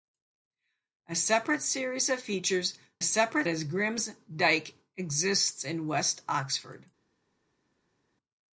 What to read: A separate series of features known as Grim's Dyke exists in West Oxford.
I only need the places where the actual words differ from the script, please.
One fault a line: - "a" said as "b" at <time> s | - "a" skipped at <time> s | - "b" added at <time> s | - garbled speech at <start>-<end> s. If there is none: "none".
- "known" said as "separate" at 3.0 s